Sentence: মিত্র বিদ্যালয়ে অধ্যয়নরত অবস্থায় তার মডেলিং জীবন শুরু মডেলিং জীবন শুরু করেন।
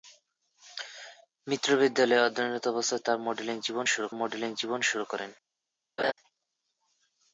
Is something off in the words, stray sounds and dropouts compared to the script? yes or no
yes